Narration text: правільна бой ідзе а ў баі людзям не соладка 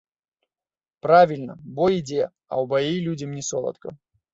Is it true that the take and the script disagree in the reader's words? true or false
false